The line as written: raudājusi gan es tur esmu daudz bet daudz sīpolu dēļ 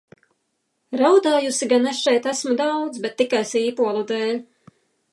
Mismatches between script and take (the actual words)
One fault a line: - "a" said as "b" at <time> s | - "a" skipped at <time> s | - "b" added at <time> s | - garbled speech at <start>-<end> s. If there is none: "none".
- "tur" said as "šeit" at 2.1 s
- "daudz" said as "tikai" at 3.2 s